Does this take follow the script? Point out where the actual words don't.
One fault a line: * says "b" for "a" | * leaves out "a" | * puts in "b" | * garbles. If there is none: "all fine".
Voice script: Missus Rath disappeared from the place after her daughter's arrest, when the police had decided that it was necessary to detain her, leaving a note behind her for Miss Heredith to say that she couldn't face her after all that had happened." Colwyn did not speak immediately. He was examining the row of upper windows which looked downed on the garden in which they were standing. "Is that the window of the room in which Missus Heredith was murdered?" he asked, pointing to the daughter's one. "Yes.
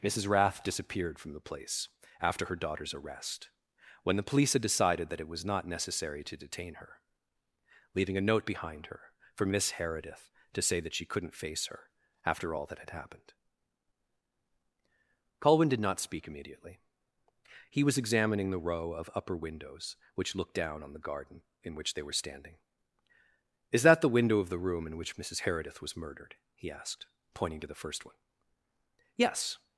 * puts in "not"
* says "down" for "downed"
* says "first" for "daughter's"